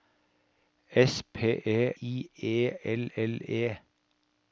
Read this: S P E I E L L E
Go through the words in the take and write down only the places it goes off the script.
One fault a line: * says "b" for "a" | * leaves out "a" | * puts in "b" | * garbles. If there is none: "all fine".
all fine